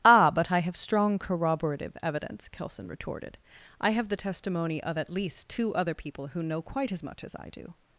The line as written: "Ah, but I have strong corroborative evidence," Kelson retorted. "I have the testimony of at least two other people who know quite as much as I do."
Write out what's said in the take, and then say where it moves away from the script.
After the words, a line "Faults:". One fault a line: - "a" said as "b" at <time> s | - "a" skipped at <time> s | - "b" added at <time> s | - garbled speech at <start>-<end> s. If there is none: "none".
"Ah, but I have strong corroborative evidence," Kelson retorted. "I have the testimony of at least two other people who know quite as much as I do."
Faults:
none